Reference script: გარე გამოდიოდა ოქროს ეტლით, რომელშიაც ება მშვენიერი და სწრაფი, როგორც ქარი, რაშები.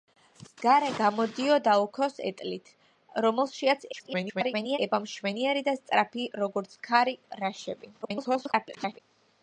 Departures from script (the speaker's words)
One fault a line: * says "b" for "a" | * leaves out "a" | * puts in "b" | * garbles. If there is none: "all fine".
* garbles
* garbles